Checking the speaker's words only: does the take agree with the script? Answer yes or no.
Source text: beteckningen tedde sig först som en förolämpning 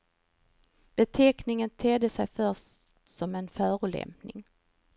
yes